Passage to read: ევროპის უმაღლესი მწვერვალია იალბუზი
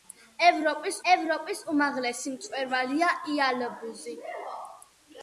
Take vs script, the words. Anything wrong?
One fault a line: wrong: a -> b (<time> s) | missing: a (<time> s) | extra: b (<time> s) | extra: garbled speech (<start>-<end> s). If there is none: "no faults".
extra: ევროპის (1.1 s)